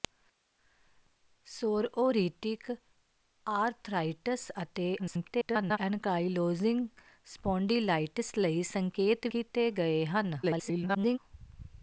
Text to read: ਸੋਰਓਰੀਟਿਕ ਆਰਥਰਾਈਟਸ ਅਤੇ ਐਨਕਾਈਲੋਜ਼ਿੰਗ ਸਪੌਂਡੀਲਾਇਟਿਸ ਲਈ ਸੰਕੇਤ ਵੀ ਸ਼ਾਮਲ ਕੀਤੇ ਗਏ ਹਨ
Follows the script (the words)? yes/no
no